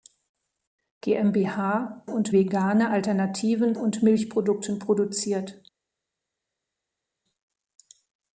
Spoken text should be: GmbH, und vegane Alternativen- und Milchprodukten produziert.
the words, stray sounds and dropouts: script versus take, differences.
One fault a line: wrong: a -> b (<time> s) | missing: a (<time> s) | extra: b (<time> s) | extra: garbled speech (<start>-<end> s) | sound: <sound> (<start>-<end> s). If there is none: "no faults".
no faults